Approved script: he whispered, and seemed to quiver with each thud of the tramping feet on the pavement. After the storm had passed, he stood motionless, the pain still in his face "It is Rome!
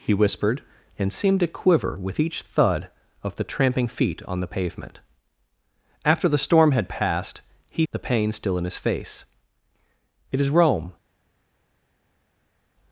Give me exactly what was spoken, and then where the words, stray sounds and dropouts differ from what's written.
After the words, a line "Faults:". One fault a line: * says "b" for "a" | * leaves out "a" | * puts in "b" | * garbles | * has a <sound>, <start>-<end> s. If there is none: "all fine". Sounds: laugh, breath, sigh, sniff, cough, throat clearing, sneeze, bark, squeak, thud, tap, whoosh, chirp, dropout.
he whispered, and seemed to quiver with each thud of the tramping feet on the pavement. After the storm had passed, he the pain still in his face "It is Rome!
Faults:
* leaves out "stood motionless"